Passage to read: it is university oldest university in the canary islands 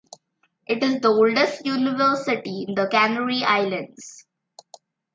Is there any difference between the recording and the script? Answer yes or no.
yes